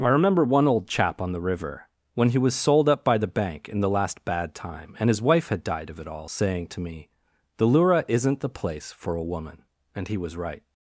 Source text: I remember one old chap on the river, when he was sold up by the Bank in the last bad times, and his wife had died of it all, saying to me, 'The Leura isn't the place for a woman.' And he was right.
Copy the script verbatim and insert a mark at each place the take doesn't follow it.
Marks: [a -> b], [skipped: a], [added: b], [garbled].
I remember one old chap on the river, when he was sold up by the Bank in the last bad [times, -> time] and his wife had died of it all, saying to me, 'The Leura isn't the place for a woman.' And he was right.